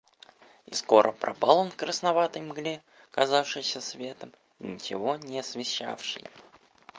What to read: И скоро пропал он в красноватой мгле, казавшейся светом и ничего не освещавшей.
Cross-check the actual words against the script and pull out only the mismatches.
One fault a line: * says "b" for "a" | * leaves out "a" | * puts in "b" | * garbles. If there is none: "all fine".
all fine